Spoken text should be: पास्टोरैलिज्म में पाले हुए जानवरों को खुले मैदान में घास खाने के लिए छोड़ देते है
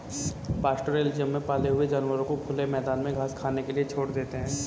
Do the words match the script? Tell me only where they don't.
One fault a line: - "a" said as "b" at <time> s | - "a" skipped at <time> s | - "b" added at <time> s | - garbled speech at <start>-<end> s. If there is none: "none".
none